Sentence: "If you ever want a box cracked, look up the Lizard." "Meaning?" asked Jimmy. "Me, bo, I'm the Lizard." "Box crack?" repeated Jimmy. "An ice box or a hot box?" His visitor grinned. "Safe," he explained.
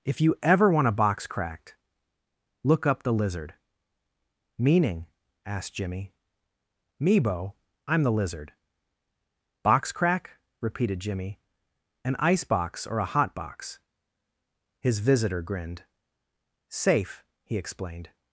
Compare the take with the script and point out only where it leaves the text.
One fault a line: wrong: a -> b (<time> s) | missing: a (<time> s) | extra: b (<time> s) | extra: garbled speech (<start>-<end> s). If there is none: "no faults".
no faults